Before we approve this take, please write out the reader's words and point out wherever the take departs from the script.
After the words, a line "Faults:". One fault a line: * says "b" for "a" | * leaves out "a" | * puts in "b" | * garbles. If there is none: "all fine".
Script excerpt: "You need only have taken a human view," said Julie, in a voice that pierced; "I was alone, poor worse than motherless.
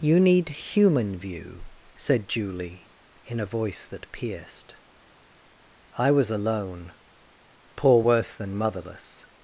"You need human view," said Julie, in a voice that pierced; "I was alone, poor worse than motherless.
Faults:
* leaves out "only have taken a"